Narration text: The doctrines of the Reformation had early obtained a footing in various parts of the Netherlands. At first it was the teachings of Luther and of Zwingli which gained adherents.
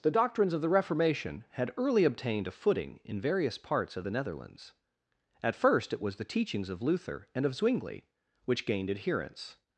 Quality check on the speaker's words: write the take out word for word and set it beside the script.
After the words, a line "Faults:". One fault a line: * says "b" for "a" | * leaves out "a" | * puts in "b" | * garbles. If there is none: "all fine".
The doctrines of the Reformation had early obtained a footing in various parts of the Netherlands. At first it was the teachings of Luther and of Zwingli which gained adherents.
Faults:
all fine